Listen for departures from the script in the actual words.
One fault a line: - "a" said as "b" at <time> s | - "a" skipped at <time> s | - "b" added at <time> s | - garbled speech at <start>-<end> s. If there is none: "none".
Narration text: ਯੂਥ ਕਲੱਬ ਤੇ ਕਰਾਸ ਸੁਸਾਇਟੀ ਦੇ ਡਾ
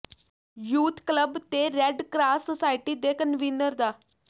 - "ਰੈੱਡ" added at 1.7 s
- "ਕਨਵੀਨਰ" added at 3.1 s